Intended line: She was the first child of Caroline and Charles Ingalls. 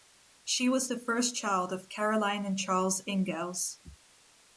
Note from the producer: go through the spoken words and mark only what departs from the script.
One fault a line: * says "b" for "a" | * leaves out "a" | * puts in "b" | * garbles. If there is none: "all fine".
all fine